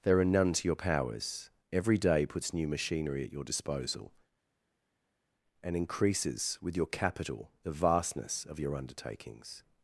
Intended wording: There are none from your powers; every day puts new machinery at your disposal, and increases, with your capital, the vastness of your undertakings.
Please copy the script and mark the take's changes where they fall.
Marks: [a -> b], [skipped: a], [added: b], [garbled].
There are none [from -> to] your powers; every day puts new machinery at your disposal, and increases, with your capital, the vastness of your undertakings.